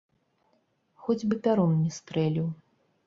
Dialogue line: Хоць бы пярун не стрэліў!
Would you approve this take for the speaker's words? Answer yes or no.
yes